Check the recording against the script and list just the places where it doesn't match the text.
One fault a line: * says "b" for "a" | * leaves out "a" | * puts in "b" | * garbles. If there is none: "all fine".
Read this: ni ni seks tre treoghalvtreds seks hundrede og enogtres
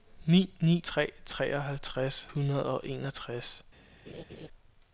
* leaves out "seks"
* leaves out "seks"